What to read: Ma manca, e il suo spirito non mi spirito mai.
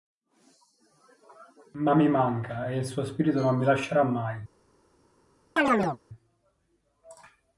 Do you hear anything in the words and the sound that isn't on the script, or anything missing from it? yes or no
yes